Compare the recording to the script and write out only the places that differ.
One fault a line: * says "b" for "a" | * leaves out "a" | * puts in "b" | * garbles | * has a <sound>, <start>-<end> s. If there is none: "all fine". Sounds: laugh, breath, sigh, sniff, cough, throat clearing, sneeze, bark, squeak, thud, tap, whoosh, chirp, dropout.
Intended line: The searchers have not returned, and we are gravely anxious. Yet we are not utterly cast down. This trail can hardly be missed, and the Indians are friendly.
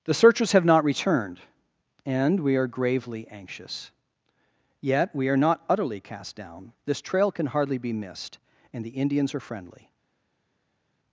all fine